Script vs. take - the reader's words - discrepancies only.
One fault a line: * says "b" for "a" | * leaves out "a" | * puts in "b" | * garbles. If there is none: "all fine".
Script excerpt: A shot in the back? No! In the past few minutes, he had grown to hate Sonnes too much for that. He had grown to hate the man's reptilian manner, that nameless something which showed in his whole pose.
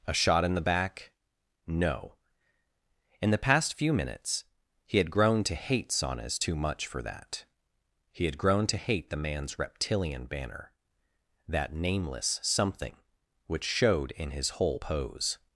* says "banner" for "manner"